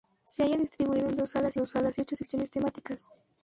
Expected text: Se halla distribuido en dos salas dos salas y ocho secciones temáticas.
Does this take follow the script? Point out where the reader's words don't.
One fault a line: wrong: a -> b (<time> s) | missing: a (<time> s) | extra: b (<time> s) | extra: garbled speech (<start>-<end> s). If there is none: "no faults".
no faults